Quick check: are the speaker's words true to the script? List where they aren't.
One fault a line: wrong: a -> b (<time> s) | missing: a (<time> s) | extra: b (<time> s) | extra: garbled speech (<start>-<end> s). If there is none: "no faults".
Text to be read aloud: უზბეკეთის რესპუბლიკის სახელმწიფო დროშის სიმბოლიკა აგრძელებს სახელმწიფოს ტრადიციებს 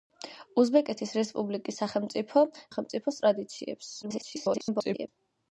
missing: დროშის სიმბოლიკა აგრძელებს (2.4 s)
extra: garbled speech (4.0-5.1 s)